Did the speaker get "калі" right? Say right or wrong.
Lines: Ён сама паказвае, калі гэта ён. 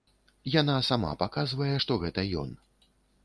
wrong